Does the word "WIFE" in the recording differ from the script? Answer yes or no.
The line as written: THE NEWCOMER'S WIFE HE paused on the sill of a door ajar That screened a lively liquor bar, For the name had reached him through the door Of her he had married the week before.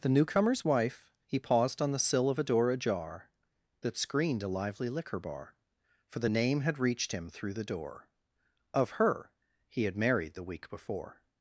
no